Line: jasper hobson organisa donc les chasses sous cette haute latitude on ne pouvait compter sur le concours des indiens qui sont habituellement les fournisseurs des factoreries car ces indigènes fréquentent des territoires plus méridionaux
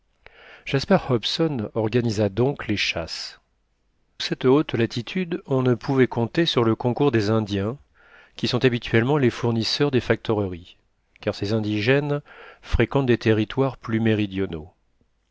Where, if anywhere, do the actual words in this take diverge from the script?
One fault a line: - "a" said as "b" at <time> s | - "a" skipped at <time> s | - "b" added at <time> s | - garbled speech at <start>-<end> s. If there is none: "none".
- "sous" skipped at 3.4 s